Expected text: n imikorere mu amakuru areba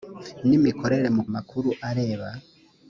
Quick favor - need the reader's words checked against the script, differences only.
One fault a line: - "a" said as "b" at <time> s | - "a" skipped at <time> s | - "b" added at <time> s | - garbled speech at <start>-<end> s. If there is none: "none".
none